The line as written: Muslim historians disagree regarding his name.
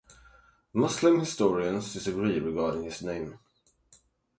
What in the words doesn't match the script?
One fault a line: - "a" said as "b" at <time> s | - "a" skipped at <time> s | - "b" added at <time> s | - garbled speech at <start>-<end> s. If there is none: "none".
none